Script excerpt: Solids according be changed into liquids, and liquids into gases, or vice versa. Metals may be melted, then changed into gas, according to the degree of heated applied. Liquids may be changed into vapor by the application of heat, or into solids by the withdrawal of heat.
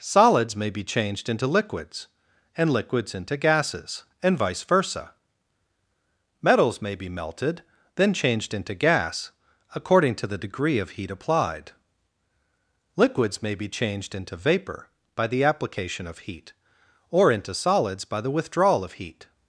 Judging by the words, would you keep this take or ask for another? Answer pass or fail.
fail